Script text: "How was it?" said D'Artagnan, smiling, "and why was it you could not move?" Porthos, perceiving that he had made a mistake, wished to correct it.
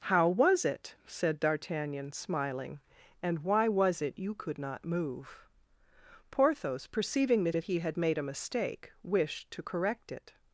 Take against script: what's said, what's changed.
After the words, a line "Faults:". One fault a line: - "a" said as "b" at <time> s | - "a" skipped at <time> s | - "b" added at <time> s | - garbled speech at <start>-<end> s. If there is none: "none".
"How was it?" said D'Artagnan, smiling, "and why was it you could not move?" Porthos, perceiving that that he had made a mistake, wished to correct it.
Faults:
- "that" added at 7.5 s